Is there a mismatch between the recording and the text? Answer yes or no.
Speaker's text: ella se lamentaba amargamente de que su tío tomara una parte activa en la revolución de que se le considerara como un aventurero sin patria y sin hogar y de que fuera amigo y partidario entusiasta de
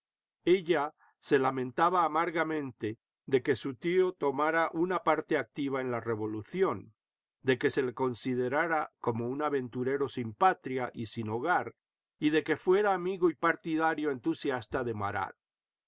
no